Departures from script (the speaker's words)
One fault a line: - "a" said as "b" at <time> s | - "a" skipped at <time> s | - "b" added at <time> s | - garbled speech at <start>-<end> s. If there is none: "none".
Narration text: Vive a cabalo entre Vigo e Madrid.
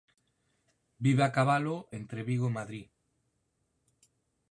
none